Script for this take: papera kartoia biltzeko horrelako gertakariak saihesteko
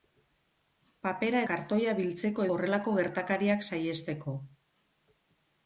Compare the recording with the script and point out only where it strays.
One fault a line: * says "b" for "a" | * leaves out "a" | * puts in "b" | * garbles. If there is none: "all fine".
all fine